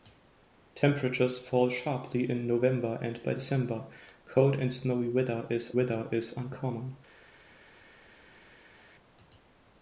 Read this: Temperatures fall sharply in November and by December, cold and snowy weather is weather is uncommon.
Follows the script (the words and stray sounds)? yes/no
yes